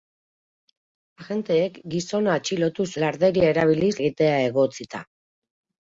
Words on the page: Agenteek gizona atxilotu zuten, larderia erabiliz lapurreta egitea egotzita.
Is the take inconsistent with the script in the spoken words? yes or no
yes